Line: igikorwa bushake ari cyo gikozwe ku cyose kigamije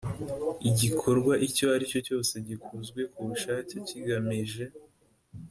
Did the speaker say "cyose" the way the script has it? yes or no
no